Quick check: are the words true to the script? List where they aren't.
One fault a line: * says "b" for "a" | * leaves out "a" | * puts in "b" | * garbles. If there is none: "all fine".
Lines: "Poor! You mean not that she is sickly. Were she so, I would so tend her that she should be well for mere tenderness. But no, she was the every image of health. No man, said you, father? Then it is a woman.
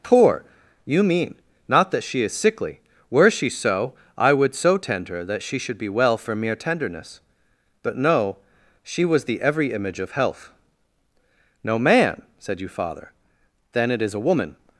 all fine